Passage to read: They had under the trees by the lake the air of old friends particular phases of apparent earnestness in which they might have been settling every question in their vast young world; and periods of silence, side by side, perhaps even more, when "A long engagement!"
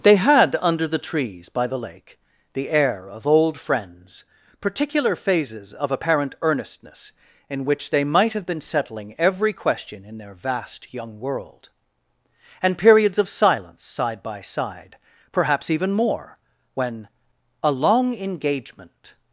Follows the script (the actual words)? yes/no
yes